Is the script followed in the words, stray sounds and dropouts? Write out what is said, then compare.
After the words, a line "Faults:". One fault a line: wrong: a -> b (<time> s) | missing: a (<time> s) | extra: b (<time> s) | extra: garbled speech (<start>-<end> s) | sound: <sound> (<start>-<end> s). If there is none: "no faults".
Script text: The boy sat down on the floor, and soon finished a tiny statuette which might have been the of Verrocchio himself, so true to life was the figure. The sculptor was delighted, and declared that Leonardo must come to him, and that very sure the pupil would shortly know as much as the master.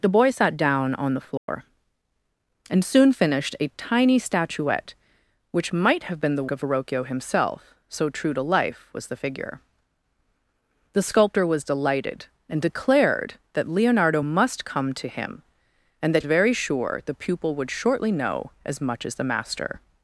The boy sat down on the floor, and soon finished a tiny statuette which might have been the of Verrocchio himself, so true to life was the figure. The sculptor was delighted, and declared that Leonardo must come to him, and that very sure the pupil would shortly know as much as the master.
Faults:
sound: dropout (1.4-1.5 s)